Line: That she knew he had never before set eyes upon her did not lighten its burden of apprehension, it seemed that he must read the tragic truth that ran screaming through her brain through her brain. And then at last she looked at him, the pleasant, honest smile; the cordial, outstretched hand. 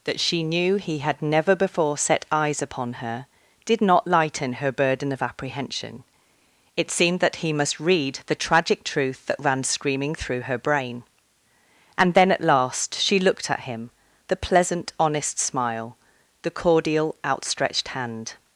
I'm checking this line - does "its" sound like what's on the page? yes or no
no